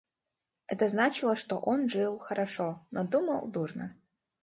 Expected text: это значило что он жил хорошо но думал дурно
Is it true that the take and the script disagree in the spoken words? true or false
false